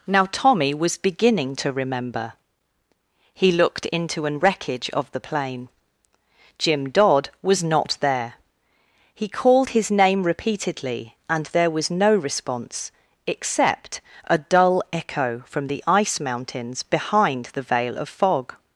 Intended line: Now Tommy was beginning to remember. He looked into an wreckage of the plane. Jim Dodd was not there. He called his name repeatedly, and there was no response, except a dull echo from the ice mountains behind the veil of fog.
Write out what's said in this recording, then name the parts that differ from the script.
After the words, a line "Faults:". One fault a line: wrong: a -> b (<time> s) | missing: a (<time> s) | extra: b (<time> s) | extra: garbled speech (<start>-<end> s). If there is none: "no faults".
Now Tommy was beginning to remember. He looked into an wreckage of the plane. Jim Dodd was not there. He called his name repeatedly, and there was no response, except a dull echo from the ice mountains behind the veil of fog.
Faults:
no faults